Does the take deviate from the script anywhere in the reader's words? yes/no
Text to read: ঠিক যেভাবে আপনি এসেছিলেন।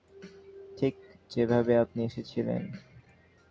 no